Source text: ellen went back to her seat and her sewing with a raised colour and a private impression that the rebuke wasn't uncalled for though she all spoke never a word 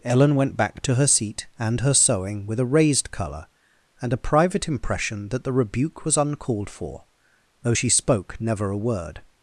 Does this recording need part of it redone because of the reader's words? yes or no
yes